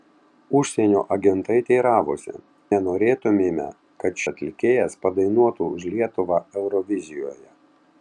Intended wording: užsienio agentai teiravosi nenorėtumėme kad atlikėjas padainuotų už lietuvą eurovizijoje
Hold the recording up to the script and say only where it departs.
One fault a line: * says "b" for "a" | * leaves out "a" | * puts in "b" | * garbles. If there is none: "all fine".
all fine